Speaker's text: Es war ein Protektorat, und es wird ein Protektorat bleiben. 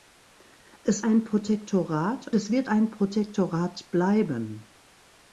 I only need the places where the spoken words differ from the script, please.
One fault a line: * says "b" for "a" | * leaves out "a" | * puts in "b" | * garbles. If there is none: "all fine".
* leaves out "war"
* leaves out "und"